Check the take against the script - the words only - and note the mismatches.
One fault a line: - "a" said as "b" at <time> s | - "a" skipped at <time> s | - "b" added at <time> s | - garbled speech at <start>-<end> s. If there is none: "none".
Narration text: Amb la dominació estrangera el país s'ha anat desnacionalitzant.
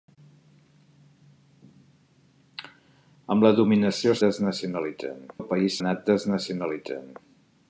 - "estrangera" said as "desnacionalitzant" at 4.3 s
- "s'ha" skipped at 5.8 s